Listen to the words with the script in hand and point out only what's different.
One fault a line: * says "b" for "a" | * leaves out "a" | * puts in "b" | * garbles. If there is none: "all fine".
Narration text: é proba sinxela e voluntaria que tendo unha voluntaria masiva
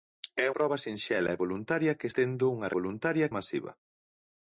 all fine